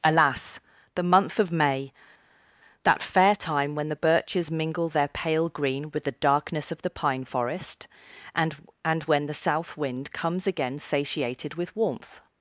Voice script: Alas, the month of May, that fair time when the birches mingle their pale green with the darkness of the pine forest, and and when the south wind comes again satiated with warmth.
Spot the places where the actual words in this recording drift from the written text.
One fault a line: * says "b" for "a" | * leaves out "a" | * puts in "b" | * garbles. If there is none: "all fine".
all fine